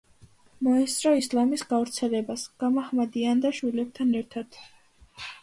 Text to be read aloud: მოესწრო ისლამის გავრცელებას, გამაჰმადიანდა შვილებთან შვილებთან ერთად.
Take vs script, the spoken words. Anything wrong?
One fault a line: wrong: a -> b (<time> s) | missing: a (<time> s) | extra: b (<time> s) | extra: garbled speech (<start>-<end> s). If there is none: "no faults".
missing: შვილებთან (4.1 s)